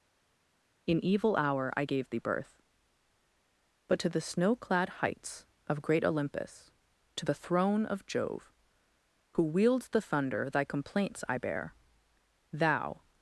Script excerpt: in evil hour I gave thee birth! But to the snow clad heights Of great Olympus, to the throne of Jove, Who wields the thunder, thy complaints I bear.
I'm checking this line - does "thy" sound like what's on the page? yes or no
yes